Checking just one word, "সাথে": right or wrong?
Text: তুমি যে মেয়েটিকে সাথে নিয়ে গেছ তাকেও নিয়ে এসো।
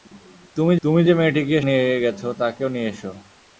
wrong